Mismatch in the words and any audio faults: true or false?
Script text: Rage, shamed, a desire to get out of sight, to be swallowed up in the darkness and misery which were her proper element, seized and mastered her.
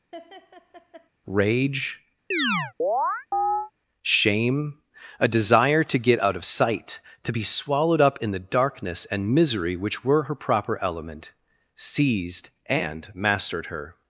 true